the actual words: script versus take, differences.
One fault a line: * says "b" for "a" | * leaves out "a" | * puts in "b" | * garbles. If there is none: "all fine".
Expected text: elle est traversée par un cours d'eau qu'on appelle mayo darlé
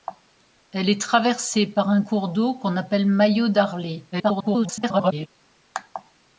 * garbles